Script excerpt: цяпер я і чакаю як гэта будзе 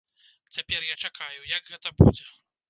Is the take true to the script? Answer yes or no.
yes